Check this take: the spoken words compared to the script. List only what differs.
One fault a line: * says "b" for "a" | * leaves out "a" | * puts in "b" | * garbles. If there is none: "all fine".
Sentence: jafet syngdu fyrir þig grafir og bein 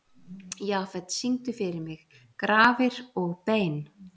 * says "mig" for "þig"